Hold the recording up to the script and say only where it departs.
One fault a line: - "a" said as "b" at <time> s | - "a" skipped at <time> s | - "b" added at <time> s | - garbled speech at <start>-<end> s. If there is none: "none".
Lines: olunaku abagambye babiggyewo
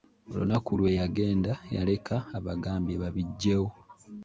- "lwe yagenda yaleka" added at 0.8 s